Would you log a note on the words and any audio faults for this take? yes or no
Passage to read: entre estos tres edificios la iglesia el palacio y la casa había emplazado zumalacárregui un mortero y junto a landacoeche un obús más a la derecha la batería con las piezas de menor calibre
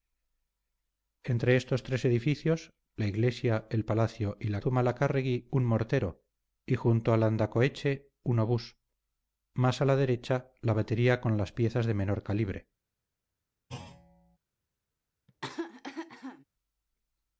yes